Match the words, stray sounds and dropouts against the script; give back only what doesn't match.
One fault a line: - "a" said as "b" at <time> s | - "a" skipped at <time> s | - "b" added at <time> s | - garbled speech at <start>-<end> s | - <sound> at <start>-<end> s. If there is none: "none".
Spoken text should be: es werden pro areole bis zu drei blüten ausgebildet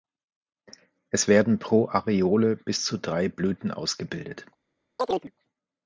- chirp at 5.0-5.3 s